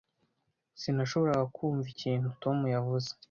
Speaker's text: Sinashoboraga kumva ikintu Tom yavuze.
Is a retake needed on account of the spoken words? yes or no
no